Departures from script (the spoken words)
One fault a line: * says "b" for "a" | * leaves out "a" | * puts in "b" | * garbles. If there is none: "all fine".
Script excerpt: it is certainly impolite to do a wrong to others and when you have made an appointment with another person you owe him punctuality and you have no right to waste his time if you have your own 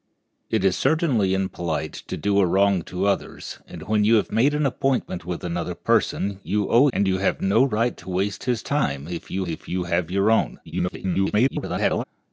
* leaves out "him punctuality"
* puts in "if you"
* garbles